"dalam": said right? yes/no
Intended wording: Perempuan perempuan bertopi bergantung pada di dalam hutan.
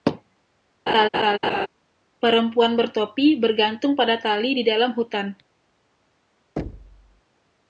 yes